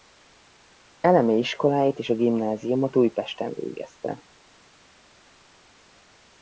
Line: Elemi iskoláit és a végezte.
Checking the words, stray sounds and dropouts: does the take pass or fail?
fail